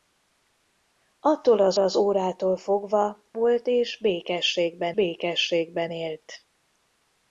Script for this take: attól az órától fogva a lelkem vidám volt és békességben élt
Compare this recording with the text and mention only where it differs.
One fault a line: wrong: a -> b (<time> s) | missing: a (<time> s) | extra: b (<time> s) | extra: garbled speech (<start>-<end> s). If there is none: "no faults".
extra: az (1.8 s)
missing: a lelkem vidám (3.2 s)
extra: békességben (4.9 s)